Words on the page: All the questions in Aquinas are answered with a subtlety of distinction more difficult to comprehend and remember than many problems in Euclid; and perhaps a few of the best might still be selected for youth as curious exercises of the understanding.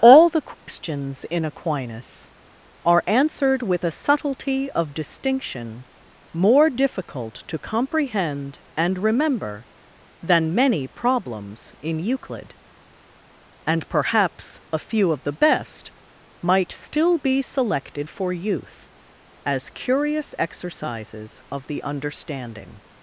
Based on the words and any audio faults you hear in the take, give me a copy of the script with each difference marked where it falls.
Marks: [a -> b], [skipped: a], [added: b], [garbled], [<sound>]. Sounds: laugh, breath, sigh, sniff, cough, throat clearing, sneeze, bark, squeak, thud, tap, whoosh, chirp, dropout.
All the questions [dropout] in Aquinas are answered with a subtlety of distinction more difficult to comprehend and remember than many problems in Euclid; and perhaps a few of the best might still be selected for youth as curious exercises of the understanding.